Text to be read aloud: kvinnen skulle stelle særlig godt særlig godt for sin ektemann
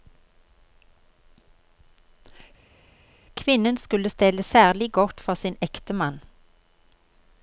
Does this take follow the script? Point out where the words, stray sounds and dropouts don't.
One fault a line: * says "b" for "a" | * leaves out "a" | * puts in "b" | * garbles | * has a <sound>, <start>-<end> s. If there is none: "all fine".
* leaves out "særlig godt"